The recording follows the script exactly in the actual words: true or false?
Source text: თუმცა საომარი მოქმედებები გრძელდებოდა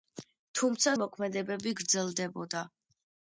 false